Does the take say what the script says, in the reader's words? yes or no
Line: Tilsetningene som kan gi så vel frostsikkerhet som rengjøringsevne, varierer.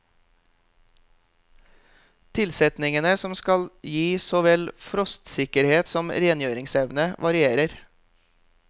no